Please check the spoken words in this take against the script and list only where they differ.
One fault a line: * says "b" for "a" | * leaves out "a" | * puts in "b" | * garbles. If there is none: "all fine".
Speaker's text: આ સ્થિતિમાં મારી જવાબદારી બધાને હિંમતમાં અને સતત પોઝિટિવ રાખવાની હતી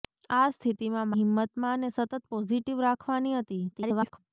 * leaves out "મારી જવાબદારી બધાને"
* garbles